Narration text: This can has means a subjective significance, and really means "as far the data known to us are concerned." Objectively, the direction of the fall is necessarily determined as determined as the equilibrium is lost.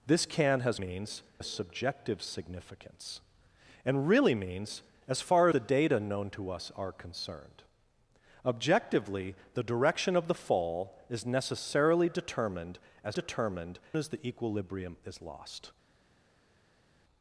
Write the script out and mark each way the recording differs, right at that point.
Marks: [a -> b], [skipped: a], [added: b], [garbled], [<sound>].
This can has means a subjective significance, and really means "as far the data known to us are concerned." Objectively, the direction of the fall is necessarily determined as determined as the equilibrium is lost.